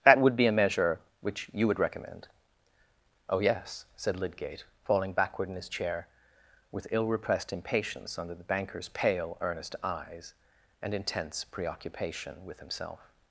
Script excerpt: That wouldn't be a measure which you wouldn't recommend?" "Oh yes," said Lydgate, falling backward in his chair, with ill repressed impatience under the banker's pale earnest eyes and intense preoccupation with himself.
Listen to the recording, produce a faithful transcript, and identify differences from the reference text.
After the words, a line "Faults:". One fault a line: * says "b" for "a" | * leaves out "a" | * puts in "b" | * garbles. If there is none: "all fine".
That would be a measure which you would recommend?" "Oh yes," said Lydgate, falling backward in his chair, with ill repressed impatience under the banker's pale earnest eyes and intense preoccupation with himself.
Faults:
* says "would" for "wouldn't"
* says "would" for "wouldn't"